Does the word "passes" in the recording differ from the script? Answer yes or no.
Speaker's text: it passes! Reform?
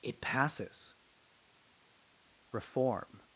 no